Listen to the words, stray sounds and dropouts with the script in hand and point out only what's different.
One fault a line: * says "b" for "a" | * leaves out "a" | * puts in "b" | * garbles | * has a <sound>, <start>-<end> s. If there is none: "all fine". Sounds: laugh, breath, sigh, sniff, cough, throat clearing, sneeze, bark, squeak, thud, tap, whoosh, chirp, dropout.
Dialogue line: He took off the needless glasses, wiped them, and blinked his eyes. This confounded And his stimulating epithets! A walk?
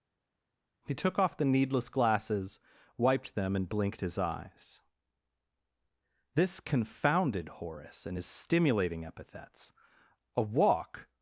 * puts in "Horace"